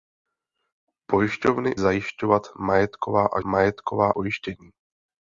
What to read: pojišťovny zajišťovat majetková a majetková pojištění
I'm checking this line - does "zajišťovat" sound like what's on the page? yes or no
yes